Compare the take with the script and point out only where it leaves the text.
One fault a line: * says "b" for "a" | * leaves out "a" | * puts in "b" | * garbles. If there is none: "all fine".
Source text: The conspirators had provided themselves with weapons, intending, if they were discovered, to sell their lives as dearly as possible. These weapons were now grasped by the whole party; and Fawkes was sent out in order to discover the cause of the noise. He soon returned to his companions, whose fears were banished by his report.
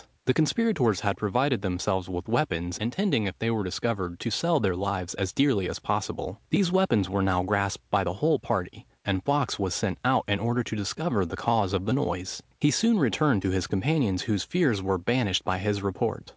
all fine